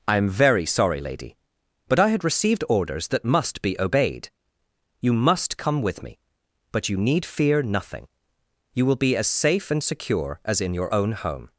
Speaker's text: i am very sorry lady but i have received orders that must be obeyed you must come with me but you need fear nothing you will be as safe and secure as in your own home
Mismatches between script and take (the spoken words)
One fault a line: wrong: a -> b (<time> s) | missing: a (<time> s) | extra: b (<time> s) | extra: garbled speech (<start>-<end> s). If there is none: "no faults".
wrong: have -> had (2.1 s)